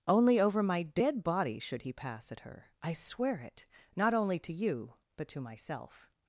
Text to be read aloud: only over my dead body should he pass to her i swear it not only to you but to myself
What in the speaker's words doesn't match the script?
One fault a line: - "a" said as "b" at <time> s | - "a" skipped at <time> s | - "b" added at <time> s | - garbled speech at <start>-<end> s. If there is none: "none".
- "to" said as "at" at 2.3 s